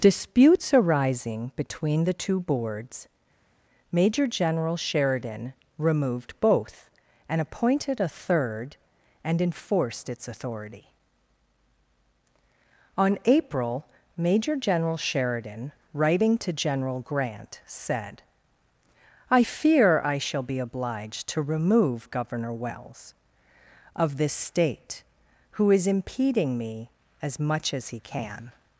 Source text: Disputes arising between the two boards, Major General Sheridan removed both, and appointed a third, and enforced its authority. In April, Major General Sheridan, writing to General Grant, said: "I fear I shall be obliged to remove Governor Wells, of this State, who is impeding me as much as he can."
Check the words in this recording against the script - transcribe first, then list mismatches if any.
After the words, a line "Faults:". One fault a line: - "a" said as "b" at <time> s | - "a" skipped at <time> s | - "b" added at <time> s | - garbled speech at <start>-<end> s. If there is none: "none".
Disputes arising between the two boards, Major General Sheridan removed both, and appointed a third, and enforced its authority. On April, Major General Sheridan, writing to General Grant, said: "I fear I shall be obliged to remove Governor Wells, of this State, who is impeding me as much as he can."
Faults:
- "In" said as "On" at 13.0 s